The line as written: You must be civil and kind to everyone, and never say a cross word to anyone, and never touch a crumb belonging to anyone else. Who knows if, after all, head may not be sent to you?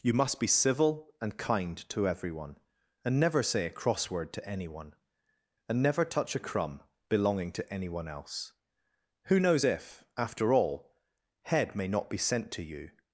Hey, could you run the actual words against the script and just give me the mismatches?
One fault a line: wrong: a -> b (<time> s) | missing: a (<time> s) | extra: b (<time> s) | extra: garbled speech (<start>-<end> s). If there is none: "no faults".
no faults